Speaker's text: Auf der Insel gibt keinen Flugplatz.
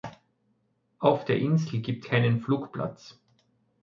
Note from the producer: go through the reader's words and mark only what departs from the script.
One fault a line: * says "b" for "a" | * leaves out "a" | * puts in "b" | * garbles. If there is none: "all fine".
all fine